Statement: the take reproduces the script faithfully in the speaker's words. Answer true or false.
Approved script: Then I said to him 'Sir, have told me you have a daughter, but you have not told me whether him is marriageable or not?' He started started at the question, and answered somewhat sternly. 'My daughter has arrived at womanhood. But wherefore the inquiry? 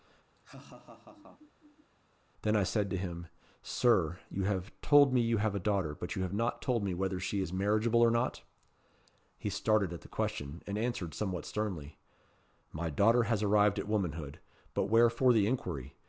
false